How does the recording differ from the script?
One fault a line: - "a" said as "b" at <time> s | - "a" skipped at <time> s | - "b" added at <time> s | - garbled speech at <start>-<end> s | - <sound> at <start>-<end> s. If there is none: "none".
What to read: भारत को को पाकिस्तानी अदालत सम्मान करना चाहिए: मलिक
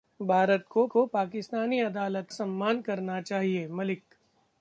none